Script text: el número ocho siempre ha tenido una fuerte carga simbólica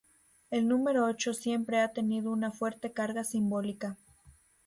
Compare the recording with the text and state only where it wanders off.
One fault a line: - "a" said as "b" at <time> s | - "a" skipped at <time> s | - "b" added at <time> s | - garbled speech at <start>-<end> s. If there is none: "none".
none